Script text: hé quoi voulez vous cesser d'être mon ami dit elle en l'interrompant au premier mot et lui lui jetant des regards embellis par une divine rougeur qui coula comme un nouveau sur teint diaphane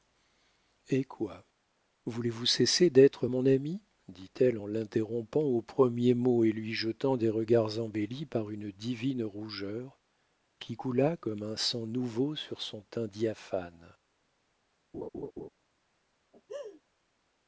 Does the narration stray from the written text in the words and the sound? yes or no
yes